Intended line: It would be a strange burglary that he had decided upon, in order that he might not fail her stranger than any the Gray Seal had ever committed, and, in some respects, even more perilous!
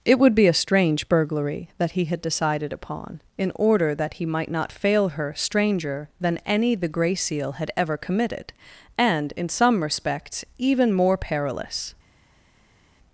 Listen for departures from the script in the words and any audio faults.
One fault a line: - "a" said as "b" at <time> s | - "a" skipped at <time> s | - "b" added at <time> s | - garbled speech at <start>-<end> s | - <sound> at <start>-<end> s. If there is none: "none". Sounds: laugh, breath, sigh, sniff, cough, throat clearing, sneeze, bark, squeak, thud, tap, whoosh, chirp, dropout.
none